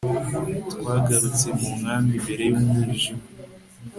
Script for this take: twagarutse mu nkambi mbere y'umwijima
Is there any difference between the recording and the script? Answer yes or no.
no